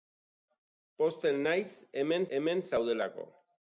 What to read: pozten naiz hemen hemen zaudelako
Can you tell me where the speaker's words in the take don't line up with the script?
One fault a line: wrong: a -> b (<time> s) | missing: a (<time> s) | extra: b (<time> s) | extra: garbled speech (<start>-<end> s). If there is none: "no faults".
no faults